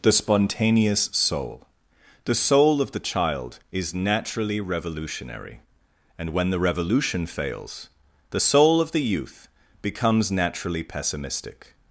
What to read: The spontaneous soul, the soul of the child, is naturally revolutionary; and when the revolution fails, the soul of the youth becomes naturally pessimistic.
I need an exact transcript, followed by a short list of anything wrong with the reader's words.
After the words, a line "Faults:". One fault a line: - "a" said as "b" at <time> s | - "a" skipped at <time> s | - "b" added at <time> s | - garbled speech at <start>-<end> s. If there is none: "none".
The spontaneous soul, the soul of the child, is naturally revolutionary; and when the revolution fails, the soul of the youth becomes naturally pessimistic.
Faults:
none